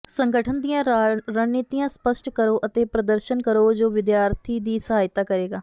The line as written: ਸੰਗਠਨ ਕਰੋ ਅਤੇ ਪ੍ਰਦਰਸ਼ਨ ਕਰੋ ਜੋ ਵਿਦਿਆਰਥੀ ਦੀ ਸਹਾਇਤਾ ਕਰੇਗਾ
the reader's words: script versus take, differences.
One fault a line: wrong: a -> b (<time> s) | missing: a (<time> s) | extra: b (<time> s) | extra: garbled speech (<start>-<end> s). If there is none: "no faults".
extra: ਦੀਆਂ ਰਣਨੀਤੀਆਂ ਸਪਸ਼ਟ (0.6 s)